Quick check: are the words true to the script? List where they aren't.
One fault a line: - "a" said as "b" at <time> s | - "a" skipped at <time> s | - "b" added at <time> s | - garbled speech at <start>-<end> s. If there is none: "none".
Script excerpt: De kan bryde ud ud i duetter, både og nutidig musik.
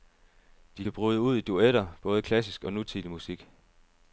- "ud" skipped at 1.4 s
- "klassisk" added at 2.2 s